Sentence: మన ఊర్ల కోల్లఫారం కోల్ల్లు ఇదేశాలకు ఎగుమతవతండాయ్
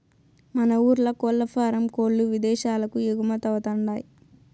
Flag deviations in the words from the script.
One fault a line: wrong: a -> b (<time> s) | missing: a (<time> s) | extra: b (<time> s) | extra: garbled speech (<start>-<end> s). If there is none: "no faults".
no faults